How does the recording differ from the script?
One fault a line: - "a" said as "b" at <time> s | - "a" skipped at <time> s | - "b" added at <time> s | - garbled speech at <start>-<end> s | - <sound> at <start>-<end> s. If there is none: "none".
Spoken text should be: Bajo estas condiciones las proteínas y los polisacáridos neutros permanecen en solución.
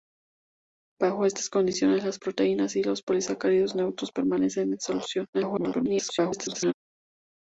- garbled speech at 5.3-6.7 s